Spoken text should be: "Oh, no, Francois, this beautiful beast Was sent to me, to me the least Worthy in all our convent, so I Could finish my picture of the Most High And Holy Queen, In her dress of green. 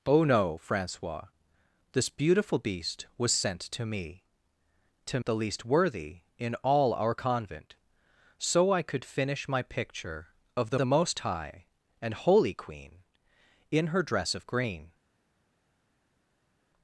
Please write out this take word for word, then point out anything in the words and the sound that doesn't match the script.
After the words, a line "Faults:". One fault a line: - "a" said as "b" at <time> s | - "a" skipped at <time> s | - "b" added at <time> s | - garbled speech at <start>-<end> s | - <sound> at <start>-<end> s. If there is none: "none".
"Oh, no, Francois, this beautiful beast Was sent to me, to the least Worthy in all our convent, so I Could finish my picture of the the Most High And Holy Queen, In her dress of green.
Faults:
- "me" skipped at 5.2 s
- "the" added at 10.7 s